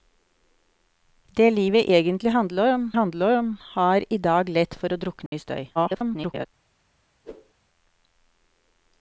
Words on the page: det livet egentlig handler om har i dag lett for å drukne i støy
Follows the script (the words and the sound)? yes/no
no